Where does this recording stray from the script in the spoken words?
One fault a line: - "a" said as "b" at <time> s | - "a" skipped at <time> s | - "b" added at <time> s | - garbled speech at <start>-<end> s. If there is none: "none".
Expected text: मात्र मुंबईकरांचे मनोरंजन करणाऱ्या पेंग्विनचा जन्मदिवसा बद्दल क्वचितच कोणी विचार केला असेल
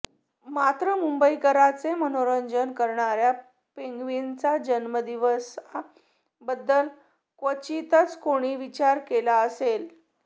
none